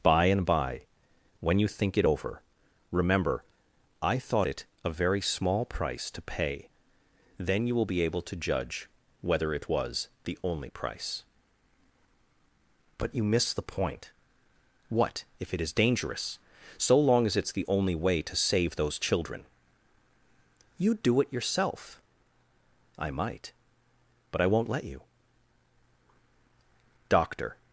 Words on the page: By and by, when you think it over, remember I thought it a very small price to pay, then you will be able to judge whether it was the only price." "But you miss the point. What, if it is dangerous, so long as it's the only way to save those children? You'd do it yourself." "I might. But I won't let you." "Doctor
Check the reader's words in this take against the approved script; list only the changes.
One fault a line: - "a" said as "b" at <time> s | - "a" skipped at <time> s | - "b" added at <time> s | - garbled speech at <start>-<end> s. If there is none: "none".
none